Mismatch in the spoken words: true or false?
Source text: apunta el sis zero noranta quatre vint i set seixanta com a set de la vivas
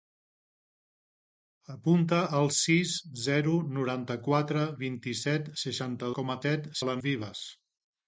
false